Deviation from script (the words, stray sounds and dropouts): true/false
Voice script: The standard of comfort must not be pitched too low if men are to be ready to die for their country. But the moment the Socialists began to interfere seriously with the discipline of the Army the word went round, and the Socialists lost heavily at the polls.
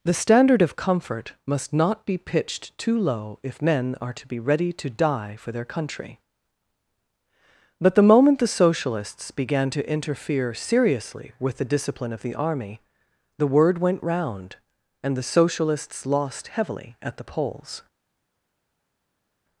false